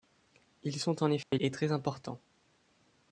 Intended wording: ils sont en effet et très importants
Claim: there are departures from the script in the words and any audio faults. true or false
true